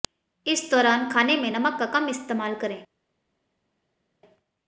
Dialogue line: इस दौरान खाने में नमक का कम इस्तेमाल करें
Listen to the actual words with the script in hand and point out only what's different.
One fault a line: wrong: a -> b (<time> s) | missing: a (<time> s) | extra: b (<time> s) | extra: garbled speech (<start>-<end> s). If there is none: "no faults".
no faults